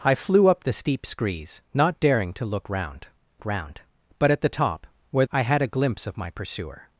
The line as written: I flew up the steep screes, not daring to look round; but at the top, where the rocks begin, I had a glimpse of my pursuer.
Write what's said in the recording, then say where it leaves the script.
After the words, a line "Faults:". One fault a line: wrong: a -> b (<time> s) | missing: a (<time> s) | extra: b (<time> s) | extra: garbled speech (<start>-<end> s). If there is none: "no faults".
I flew up the steep screes, not daring to look round round; but at the top, where I had a glimpse of my pursuer.
Faults:
extra: round (3.4 s)
missing: the rocks begin (5.3 s)